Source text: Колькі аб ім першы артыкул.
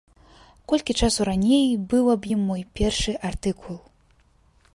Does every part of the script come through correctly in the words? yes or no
no